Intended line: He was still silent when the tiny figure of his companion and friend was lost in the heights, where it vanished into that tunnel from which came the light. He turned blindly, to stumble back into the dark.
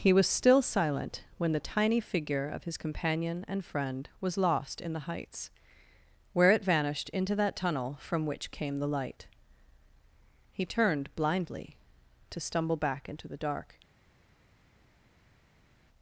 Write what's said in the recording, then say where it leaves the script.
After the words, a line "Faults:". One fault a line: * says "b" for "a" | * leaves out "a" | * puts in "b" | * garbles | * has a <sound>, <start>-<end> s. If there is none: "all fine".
He was still silent when the tiny figure of his companion and friend was lost in the heights, where it vanished into that tunnel from which came the light. He turned blindly, to stumble back into the dark.
Faults:
all fine